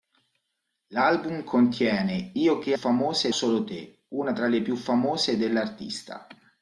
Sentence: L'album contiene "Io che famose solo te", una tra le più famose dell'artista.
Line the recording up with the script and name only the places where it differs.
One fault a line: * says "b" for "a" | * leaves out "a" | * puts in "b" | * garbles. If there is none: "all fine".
all fine